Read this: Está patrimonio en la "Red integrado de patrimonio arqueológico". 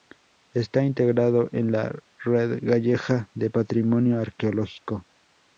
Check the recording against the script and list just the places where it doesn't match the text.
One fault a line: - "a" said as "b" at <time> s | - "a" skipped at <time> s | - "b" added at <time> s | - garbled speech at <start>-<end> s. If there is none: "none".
- "patrimonio" said as "integrado" at 0.8 s
- "integrado" said as "gallega" at 2.6 s